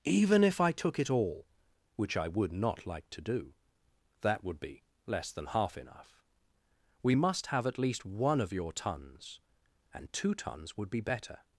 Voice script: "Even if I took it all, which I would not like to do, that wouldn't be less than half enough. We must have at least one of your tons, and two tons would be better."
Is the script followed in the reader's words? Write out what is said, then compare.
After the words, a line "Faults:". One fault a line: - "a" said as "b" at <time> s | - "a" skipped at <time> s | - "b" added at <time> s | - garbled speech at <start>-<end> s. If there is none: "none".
"Even if I took it all, which I would not like to do, that would be less than half enough. We must have at least one of your tons, and two tons would be better."
Faults:
- "wouldn't" said as "would" at 4.4 s